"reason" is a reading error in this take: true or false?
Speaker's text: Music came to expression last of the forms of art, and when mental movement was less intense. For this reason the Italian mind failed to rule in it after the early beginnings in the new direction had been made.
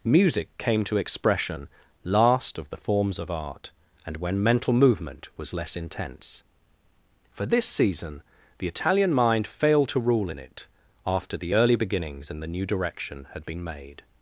true